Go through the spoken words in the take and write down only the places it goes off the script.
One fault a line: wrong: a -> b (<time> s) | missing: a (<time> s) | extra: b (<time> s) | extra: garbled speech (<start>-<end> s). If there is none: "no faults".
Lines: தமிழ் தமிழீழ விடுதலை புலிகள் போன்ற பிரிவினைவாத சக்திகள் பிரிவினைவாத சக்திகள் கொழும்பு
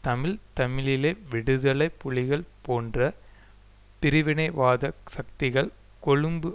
missing: பிரிவினைவாத சக்திகள் (5.7 s)